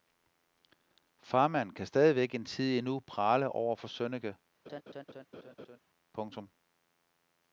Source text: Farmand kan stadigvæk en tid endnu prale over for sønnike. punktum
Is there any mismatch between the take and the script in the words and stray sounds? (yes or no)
yes